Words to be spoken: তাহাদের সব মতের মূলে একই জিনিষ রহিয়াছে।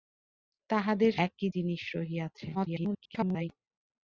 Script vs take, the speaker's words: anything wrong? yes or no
yes